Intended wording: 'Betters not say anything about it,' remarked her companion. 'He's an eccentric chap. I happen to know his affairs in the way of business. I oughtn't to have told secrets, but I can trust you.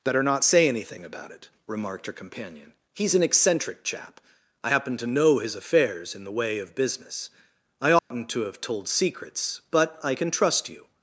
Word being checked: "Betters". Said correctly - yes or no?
no